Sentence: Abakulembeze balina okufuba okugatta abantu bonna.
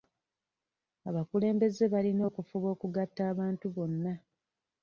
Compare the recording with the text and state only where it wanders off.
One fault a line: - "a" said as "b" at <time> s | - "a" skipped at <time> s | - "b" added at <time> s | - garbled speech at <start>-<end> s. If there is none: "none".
none